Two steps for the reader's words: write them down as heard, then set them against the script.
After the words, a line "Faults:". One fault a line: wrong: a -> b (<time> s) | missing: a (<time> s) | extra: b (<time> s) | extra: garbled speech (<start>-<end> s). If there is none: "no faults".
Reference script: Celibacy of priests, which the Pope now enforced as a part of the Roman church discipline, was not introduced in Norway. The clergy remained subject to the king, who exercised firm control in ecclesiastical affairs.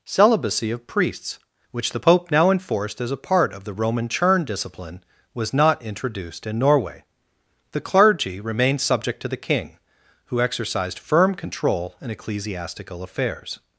Celibacy of priests, which the Pope now enforced as a part of the Roman churn discipline, was not introduced in Norway. The clergy remained subject to the king, who exercised firm control in ecclesiastical affairs.
Faults:
wrong: church -> churn (4.1 s)